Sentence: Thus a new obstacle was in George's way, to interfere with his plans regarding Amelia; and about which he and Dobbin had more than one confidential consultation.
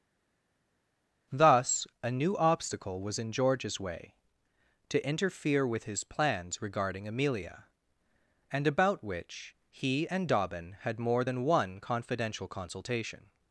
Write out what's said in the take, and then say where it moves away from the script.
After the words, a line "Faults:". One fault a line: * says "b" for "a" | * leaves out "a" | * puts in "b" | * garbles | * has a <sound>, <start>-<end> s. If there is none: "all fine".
Thus a new obstacle was in George's way, to interfere with his plans regarding Amelia; and about which he and Dobbin had more than one confidential consultation.
Faults:
all fine